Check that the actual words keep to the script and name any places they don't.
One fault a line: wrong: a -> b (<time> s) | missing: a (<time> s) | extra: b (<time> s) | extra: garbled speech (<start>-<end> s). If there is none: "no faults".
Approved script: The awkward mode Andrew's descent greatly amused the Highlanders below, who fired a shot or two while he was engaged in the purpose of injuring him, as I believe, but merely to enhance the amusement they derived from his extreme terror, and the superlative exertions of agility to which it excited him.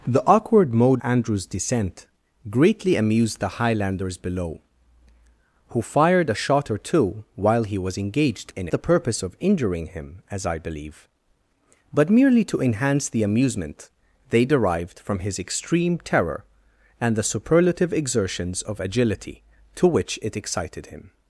no faults